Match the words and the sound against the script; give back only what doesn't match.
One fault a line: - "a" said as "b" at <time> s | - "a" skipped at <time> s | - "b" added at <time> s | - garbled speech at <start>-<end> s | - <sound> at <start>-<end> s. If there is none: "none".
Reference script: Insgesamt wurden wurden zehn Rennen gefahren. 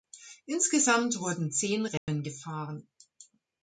- "wurden" skipped at 1.5 s
- dropout at 2.0-2.1 s